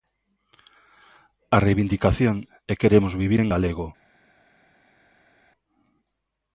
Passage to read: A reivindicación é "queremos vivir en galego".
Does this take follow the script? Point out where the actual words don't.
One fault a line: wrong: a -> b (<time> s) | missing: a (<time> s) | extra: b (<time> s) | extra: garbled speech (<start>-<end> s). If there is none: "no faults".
no faults